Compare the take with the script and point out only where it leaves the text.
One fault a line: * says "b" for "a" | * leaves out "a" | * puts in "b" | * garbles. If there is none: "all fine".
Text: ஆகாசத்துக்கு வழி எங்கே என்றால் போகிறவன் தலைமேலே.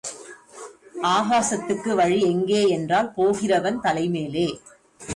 all fine